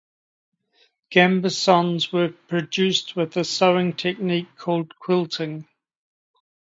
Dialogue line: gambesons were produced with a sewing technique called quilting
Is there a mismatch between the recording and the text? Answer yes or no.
no